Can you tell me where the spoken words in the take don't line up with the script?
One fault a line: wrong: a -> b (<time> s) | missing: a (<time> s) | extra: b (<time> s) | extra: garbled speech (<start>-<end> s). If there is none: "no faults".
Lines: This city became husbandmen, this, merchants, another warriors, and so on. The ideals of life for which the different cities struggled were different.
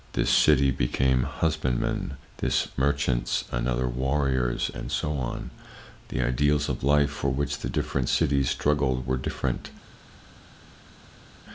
no faults